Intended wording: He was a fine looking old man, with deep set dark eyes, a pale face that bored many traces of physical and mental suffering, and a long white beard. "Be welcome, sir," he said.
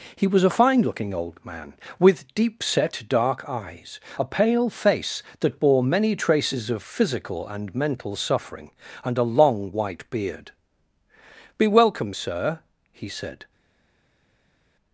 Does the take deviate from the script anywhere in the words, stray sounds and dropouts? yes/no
yes